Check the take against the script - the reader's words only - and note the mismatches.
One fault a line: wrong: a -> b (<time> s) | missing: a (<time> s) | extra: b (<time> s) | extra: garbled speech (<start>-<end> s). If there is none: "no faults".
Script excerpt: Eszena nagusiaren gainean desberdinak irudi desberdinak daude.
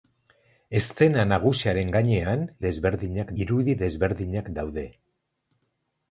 no faults